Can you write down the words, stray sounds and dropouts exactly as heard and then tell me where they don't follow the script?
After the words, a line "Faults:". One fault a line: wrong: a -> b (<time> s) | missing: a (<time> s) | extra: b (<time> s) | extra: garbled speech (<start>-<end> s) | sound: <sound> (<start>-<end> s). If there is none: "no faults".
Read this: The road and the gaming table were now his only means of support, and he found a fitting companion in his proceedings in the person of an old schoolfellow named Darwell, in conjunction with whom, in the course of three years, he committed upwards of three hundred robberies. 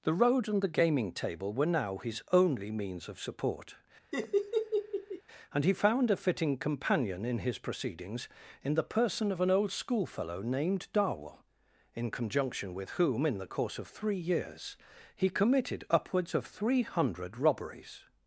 The road and the gaming table were now his only means of support, and he found a fitting companion in his proceedings in the person of an old schoolfellow named Darwell, in conjunction with whom, in the course of three years, he committed upwards of three hundred robberies.
Faults:
sound: laugh (4.1-5.2 s)